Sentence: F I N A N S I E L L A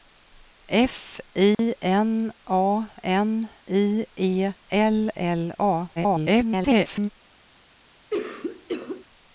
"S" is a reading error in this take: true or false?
true